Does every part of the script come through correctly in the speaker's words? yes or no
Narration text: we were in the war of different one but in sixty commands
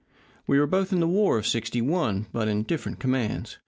no